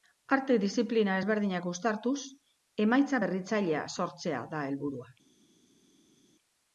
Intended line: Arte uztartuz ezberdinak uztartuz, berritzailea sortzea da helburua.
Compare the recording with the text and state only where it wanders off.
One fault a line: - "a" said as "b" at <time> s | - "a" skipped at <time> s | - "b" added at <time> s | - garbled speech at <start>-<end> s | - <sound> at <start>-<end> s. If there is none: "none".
- "uztartuz" said as "diziplina" at 0.6 s
- "emaitza" added at 2.9 s